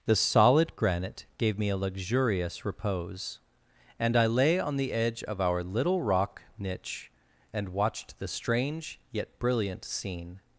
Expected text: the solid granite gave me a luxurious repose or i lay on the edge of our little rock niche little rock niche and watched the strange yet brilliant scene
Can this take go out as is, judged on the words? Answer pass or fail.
fail